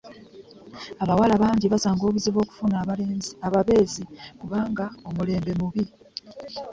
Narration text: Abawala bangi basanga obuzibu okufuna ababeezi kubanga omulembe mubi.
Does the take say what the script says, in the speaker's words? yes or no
yes